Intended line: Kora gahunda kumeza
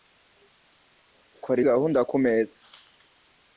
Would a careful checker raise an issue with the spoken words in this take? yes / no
no